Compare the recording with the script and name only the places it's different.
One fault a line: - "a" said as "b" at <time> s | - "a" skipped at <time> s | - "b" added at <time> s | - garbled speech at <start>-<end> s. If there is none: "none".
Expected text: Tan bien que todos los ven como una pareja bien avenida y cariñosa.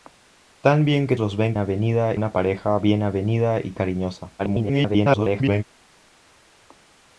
- "todos" skipped at 1.1 s
- "como" said as "avenida" at 1.6 s
- garbled speech at 4.4-5.6 s